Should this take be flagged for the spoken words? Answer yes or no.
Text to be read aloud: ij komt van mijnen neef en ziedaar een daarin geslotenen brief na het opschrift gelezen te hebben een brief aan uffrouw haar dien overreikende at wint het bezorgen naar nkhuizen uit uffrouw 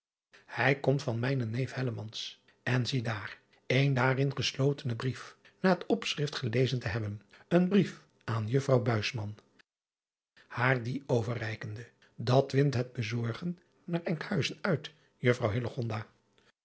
no